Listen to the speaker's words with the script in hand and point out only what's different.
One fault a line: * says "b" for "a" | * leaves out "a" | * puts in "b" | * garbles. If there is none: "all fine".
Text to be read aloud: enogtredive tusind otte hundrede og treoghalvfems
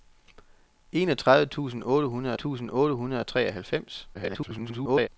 * puts in "tusind otte hundrede"
* garbles